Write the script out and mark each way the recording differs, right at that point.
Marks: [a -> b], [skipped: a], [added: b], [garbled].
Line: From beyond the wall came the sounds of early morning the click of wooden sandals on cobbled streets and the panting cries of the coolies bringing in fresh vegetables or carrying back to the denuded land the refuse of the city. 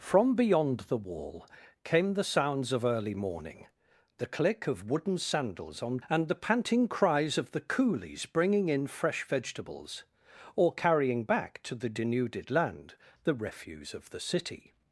From beyond the wall came the sounds of early morning the click of wooden sandals on [skipped: cobbled streets] and the panting cries of the coolies bringing in fresh vegetables or carrying back to the denuded land the refuse of the city.